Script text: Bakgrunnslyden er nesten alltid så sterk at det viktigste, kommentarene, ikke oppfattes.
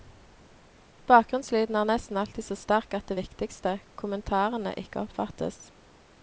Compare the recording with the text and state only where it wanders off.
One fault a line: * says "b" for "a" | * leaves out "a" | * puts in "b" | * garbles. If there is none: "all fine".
all fine